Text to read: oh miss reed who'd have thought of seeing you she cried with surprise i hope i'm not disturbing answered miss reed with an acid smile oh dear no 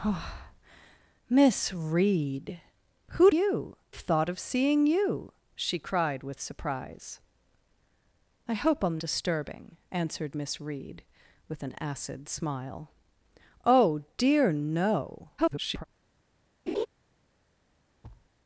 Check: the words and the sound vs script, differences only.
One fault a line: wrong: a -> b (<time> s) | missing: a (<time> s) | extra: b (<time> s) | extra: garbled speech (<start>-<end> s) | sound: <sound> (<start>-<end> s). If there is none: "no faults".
wrong: have -> you (3.3 s)
missing: not (9.0 s)
extra: garbled speech (15.4-15.8 s)
sound: laugh (16.7-16.9 s)
sound: thud (18.0-18.3 s)